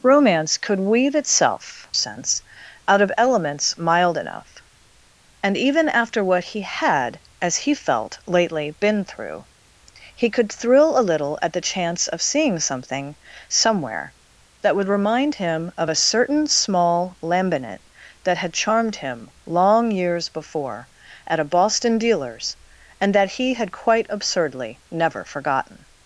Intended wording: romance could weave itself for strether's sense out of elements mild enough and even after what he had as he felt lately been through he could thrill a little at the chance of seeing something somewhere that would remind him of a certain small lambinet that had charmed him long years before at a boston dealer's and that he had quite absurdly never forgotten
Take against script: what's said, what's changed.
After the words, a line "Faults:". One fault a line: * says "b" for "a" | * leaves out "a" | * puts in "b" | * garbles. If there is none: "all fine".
romance could weave itself sense out of elements mild enough and even after what he had as he felt lately been through he could thrill a little at the chance of seeing something somewhere that would remind him of a certain small lambinet that had charmed him long years before at a boston dealer's and that he had quite absurdly never forgotten
Faults:
* leaves out "for strether's"